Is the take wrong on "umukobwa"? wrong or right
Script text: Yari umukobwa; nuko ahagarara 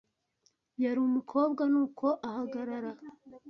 right